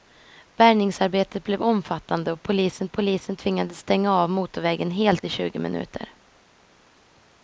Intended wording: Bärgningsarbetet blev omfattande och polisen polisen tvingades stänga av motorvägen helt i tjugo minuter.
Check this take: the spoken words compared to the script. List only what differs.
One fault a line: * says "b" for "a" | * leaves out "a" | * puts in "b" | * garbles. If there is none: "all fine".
all fine